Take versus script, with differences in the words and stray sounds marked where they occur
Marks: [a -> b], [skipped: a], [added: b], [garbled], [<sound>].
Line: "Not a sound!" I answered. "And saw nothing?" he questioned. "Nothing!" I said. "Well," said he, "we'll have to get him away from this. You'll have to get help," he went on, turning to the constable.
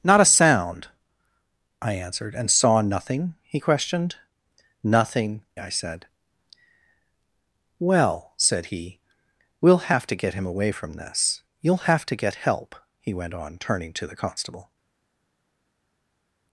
"Not a sound!" I answered. "And saw nothing?" he questioned. "Nothing!" I said. "Well," said he, "we'll have to get him away from this. You'll have to get help," he went on, turning to the constable.